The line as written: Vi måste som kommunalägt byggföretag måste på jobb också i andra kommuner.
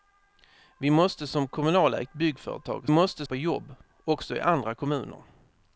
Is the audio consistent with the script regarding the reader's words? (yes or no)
yes